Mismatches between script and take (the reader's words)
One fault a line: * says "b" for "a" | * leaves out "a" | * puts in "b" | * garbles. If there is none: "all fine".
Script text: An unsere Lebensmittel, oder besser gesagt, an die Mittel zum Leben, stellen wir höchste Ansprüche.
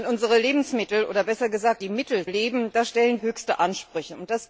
* leaves out "an"
* leaves out "zum"
* leaves out "wir"